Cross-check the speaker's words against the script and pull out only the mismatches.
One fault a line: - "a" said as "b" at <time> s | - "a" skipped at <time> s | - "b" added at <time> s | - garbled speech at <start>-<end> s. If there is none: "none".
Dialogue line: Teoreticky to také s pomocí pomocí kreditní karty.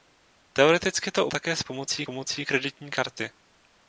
none